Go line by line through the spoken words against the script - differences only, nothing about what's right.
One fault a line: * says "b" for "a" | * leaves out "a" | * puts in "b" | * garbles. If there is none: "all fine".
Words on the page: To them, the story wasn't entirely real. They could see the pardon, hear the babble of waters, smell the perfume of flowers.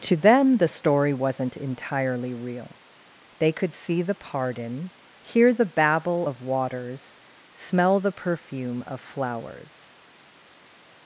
all fine